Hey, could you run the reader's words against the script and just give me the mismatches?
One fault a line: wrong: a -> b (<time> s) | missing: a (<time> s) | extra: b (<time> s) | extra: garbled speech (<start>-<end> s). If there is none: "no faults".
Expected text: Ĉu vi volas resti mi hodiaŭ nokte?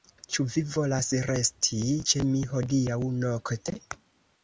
extra: ĉe (2.1 s)